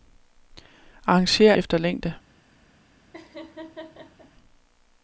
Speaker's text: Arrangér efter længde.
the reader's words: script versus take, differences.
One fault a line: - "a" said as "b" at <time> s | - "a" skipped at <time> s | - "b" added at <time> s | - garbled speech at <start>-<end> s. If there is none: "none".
none